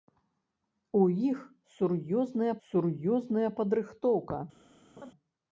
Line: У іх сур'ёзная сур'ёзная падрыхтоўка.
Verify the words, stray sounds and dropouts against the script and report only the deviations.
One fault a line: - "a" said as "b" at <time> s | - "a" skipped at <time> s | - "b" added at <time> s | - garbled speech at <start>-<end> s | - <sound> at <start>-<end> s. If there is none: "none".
- laugh at 5.0-5.1 s